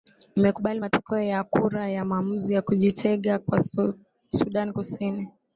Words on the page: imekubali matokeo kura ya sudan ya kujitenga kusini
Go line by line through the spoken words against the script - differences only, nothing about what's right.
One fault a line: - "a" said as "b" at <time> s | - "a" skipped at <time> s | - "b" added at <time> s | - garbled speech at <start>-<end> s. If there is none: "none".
- "ya" added at 1.2 s
- "sudan" said as "maamuzi" at 2.0 s
- "kwa sudan" added at 3.4 s